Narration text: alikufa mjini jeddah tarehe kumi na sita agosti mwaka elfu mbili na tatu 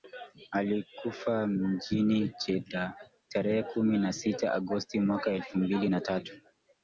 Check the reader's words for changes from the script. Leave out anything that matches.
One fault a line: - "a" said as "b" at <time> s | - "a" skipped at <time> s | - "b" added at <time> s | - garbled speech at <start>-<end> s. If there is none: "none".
none